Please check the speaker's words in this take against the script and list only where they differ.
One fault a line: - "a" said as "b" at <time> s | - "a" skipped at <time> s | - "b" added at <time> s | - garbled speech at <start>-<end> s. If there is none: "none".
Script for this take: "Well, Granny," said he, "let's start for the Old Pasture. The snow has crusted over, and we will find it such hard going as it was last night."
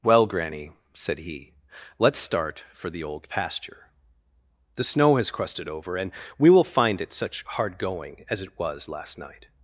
none